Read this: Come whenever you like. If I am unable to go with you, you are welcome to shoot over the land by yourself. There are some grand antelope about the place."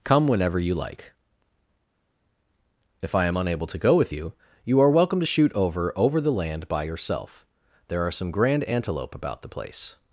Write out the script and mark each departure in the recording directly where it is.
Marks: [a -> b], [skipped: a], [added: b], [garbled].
Come whenever you like. If I am unable to go with you, you are welcome to shoot over [added: over] the land by yourself. There are some grand antelope about the place."